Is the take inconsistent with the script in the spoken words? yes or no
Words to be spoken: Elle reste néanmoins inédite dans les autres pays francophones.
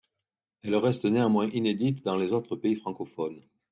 no